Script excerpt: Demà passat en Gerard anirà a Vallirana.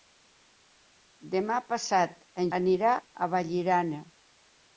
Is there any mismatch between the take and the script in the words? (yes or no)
yes